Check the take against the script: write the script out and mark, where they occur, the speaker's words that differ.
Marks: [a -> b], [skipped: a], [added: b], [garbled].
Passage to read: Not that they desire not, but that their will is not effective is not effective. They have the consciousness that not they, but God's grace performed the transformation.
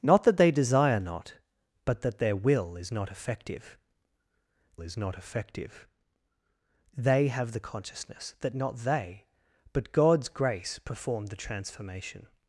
Not that they desire not, but that their will is not effective is not effective. They have the consciousness that not they, but God's grace performed the transformation.